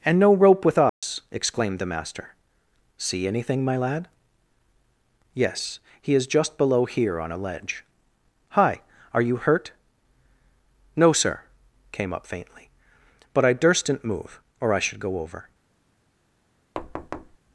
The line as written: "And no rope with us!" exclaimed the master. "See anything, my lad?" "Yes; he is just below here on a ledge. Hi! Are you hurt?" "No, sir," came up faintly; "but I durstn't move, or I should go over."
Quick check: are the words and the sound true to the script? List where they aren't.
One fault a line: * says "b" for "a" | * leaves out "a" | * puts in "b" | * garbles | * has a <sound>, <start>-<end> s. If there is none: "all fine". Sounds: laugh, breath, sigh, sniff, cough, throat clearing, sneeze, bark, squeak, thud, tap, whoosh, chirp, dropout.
* has a dropout, 0.9-1.0 s
* has a thud, 16.7-17.4 s